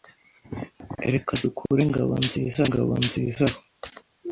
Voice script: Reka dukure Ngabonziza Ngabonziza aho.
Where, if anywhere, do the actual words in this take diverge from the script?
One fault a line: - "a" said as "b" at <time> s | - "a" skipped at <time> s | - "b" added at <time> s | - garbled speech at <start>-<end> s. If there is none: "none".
none